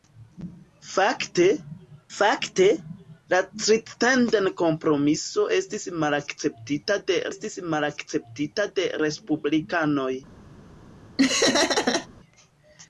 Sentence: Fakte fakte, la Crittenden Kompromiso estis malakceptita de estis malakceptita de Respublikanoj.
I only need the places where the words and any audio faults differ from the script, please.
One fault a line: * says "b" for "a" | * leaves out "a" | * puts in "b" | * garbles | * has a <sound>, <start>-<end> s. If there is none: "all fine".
* has a laugh, 11.2-12.1 s